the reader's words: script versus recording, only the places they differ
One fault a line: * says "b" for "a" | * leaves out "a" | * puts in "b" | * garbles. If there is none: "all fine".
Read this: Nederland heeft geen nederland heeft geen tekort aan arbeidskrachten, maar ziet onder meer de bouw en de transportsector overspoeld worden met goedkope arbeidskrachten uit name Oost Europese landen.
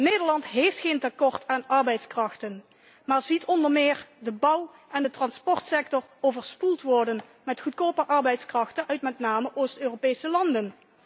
* leaves out "nederland heeft geen"
* puts in "met"